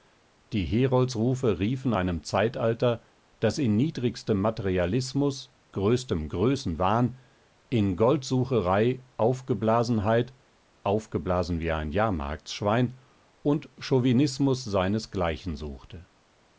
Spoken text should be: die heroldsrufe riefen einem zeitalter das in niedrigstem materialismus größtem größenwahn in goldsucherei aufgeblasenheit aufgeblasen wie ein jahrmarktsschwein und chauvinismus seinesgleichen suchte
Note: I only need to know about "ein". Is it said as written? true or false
true